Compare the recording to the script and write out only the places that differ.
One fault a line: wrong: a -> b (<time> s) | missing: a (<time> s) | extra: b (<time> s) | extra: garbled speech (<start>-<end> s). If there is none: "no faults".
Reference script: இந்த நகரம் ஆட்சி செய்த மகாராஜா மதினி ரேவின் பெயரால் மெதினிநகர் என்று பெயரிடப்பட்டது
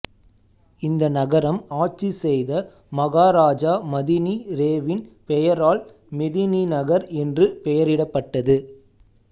no faults